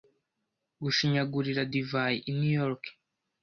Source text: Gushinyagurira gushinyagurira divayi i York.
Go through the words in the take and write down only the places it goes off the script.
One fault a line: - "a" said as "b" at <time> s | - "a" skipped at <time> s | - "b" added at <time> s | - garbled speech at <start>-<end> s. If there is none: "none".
- "gushinyagurira" skipped at 1.6 s
- "New" added at 2.4 s